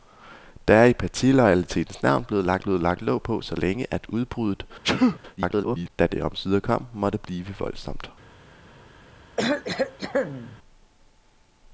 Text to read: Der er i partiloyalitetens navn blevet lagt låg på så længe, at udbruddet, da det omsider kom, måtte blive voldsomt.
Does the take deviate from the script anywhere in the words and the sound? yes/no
yes